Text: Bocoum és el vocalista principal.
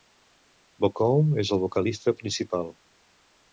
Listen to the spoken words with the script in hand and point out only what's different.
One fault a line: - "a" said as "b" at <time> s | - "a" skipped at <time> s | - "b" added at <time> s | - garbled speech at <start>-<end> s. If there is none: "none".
none